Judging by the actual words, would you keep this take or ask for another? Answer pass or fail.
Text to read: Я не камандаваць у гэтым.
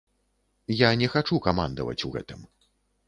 fail